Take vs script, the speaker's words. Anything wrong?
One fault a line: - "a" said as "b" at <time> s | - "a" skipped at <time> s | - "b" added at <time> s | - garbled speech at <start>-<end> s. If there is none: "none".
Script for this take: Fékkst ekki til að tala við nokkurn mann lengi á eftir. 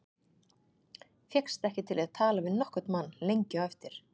none